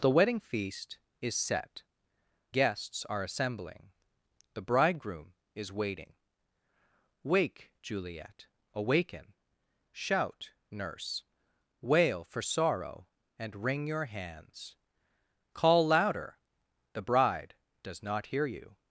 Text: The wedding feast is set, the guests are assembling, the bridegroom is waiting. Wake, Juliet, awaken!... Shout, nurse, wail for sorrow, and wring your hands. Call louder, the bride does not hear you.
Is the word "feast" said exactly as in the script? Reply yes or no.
yes